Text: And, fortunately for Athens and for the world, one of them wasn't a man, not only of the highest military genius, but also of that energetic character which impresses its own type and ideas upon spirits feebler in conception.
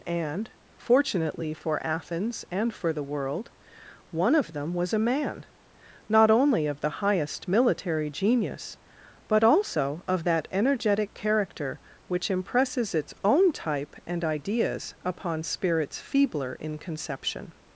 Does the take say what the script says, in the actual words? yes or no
no